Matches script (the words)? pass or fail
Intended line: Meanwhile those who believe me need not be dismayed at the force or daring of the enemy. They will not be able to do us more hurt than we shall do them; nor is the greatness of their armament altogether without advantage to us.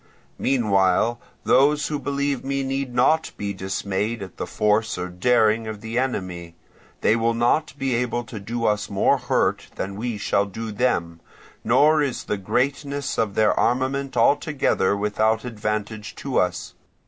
pass